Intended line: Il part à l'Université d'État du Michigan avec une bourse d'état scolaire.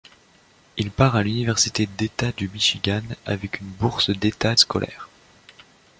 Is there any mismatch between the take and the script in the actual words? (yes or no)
no